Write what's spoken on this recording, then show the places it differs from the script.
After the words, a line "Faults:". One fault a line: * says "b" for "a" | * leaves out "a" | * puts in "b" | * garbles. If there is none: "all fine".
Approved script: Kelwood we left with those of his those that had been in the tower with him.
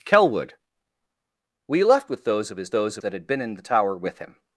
Kelwood we left with those of his those that had been in the tower with him.
Faults:
all fine